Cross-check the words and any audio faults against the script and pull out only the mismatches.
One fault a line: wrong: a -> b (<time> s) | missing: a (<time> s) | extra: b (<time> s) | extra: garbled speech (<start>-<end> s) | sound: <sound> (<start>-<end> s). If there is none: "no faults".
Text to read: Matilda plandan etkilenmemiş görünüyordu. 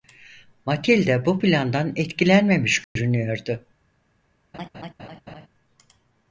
extra: bu (1.2 s)
sound: dropout (2.8-3.0 s)
sound: laugh (4.5-5.5 s)